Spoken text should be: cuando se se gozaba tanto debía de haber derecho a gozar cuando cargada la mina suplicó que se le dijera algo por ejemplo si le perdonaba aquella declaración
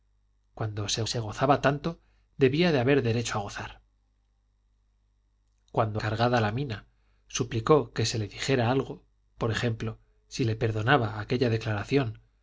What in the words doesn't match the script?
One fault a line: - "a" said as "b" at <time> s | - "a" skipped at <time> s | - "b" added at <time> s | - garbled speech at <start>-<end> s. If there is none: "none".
none